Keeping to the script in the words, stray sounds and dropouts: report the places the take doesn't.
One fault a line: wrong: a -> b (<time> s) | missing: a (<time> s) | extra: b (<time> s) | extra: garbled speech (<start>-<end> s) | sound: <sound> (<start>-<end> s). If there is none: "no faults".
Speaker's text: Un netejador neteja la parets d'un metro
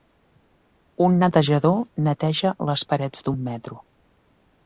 wrong: la -> les (2.7 s)